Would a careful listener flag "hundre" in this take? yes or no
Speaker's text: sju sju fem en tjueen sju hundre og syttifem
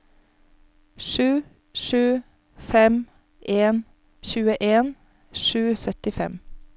yes